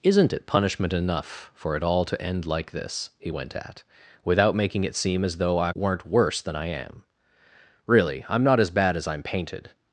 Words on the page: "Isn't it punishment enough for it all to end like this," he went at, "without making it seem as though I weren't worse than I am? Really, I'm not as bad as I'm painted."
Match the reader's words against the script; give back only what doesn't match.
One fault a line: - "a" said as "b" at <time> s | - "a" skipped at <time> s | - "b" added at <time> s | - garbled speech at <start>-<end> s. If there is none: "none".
none